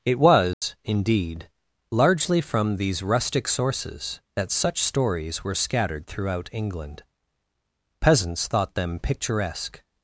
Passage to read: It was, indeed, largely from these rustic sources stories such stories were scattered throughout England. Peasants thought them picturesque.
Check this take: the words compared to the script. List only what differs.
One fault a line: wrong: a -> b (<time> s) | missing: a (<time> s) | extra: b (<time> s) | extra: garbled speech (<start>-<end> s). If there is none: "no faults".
wrong: stories -> that (4.3 s)